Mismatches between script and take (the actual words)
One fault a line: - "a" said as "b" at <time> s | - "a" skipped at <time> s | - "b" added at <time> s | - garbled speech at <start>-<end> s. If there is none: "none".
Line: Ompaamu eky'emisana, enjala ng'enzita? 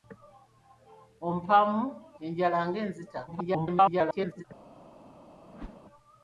- "eky'emisana" skipped at 1.8 s
- garbled speech at 3.3-4.4 s